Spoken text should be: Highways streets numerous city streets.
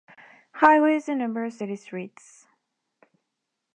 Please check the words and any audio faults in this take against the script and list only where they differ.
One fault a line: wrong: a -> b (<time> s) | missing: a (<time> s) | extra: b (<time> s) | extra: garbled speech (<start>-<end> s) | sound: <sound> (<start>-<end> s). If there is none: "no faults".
wrong: streets -> and (1.1 s)